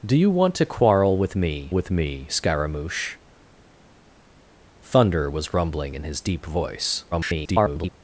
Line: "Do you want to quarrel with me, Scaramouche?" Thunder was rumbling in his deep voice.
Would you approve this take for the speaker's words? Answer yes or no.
no